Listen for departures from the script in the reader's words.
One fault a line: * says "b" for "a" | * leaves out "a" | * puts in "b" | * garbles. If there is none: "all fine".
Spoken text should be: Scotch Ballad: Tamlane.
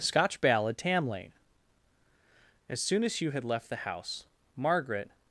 * puts in "As soon as Hugh had left the house Margaret"